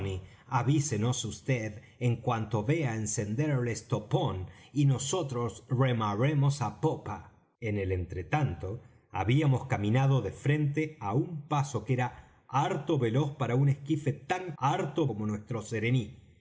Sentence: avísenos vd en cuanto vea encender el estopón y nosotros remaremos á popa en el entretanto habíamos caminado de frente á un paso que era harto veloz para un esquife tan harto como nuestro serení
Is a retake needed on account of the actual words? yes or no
no